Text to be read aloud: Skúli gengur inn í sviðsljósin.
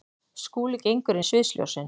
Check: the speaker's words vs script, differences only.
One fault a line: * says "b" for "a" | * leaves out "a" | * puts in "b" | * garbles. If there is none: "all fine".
* leaves out "inn"